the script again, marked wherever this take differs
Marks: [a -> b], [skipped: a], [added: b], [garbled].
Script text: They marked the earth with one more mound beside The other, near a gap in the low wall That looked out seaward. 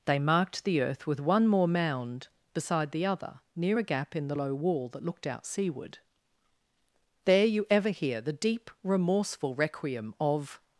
They marked the earth with one more mound beside The other, near a gap in the low wall That looked out seaward. [added: There you ever hear The deep remorseful requiem of]